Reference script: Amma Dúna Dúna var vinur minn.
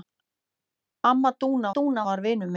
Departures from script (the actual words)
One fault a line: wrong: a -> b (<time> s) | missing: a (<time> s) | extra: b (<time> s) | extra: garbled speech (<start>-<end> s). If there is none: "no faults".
no faults